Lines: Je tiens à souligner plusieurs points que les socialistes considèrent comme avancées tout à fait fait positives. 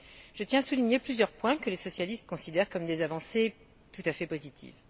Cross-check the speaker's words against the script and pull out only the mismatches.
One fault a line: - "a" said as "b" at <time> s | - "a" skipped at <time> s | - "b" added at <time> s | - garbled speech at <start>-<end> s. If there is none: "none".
- "des" added at 2.9 s
- "fait" skipped at 4.3 s